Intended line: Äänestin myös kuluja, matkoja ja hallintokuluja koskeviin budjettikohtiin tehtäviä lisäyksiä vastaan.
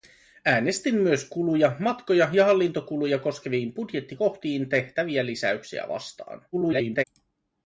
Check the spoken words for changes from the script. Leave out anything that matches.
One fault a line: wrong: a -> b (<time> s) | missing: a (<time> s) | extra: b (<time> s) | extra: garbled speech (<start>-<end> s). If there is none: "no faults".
extra: garbled speech (6.5-7.0 s)